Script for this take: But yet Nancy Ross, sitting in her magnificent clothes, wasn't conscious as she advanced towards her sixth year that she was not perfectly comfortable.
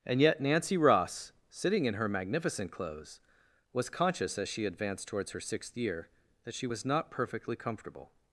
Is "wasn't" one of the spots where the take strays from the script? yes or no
yes